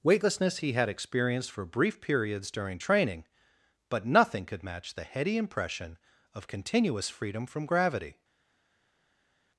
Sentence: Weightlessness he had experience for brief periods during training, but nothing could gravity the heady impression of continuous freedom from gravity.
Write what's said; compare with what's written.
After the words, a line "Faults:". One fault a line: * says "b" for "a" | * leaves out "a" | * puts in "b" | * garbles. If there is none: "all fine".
Weightlessness he had experienced for brief periods during training, but nothing could match the heady impression of continuous freedom from gravity.
Faults:
* says "experienced" for "experience"
* says "match" for "gravity"